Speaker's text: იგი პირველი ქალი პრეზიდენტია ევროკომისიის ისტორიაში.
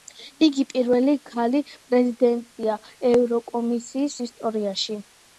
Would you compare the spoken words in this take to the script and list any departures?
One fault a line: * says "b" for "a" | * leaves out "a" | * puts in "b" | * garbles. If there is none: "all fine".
all fine